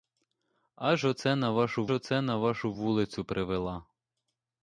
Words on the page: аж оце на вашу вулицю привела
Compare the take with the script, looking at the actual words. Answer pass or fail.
fail